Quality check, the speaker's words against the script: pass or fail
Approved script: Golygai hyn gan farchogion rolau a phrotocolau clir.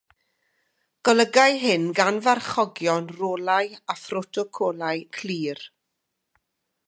pass